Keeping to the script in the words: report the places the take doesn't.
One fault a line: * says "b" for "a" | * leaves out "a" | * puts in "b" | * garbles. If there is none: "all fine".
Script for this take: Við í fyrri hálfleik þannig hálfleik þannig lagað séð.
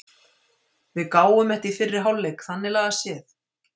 * puts in "gáfum þetta"
* leaves out "hálfleik þannig"